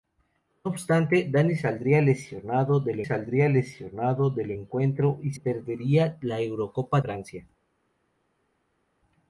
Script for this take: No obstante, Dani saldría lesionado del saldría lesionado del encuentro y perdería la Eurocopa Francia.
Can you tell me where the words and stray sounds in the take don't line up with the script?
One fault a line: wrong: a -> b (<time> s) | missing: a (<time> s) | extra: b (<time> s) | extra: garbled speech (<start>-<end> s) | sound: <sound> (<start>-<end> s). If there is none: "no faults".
no faults